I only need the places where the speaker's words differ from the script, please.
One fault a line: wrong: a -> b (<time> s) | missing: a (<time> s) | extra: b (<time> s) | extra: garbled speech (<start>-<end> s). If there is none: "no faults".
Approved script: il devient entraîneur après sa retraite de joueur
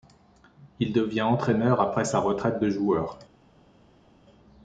no faults